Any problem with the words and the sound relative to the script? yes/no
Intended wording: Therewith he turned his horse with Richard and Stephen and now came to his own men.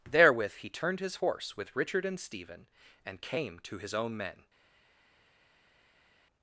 yes